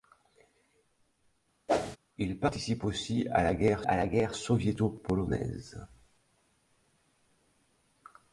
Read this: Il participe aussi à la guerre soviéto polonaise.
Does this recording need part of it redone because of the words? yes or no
yes